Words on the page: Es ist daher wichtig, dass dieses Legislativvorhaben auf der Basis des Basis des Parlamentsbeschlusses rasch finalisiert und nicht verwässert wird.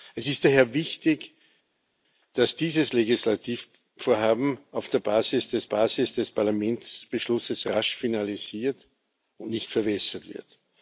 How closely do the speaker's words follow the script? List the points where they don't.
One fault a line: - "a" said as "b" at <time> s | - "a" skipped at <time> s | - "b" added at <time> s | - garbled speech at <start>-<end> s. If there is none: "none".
none